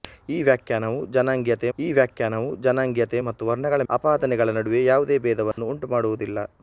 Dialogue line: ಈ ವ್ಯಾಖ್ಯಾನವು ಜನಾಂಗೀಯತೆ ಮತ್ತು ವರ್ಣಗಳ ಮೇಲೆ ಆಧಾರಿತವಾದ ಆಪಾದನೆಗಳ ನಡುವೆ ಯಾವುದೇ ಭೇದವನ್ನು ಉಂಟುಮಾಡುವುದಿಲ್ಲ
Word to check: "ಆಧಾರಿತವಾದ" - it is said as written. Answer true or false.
false